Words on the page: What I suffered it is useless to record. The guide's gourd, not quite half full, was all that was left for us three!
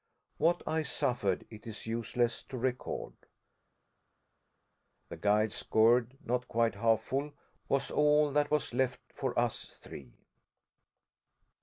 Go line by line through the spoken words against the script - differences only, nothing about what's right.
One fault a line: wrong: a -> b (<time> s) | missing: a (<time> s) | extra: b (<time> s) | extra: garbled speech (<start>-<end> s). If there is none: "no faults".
no faults